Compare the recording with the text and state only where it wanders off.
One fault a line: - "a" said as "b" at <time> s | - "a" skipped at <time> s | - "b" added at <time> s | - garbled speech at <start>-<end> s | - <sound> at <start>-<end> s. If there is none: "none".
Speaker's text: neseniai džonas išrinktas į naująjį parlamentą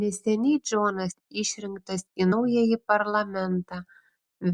none